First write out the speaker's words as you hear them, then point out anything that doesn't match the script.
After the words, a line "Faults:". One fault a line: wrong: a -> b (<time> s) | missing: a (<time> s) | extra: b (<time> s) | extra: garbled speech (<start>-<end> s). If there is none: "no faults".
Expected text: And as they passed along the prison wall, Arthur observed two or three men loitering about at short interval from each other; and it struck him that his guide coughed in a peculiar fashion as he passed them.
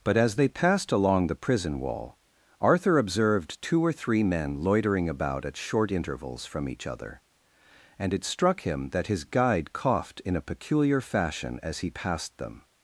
But as they passed along the prison wall, Arthur observed two or three men loitering about at short intervals from each other; and it struck him that his guide coughed in a peculiar fashion as he passed them.
Faults:
wrong: And -> But (0.0 s)
wrong: interval -> intervals (5.9 s)